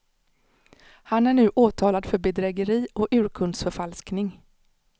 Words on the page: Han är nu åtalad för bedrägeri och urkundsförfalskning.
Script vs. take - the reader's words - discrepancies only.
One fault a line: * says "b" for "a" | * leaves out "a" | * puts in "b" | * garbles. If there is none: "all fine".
all fine